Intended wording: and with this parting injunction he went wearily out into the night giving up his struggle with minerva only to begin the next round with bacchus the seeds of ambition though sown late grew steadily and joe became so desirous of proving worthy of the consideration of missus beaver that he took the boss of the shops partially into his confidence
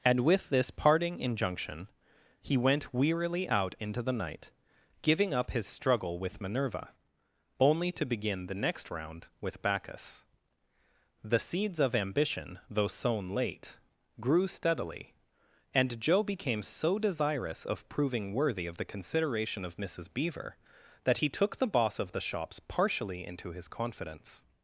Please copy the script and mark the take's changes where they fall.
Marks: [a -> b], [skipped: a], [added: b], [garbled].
and with this parting injunction he went wearily out into the night giving up his struggle with minerva only to begin the next round with bacchus the seeds of ambition though sown late grew steadily and joe became so desirous of proving worthy of the consideration of missus beaver that he took the boss of the shops partially into his confidence